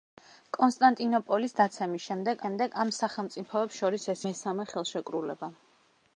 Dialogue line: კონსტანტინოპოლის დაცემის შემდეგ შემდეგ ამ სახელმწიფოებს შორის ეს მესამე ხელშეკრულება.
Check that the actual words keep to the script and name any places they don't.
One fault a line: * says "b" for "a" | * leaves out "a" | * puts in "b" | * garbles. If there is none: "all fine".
all fine